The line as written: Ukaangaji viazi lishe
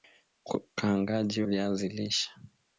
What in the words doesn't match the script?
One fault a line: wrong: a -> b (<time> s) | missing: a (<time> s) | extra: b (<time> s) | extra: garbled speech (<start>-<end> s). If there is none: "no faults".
no faults